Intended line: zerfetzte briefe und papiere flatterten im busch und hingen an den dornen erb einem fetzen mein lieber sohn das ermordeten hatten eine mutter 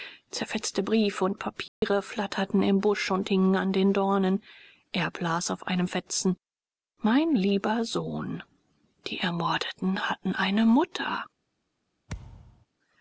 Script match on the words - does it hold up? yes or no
no